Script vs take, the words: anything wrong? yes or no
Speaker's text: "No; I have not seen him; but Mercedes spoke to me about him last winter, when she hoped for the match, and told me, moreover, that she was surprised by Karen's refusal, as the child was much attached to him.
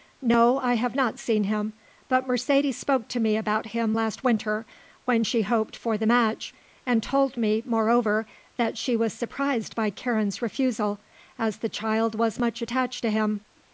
no